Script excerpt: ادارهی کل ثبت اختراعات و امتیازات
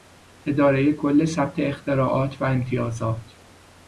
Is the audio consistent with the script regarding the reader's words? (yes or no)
yes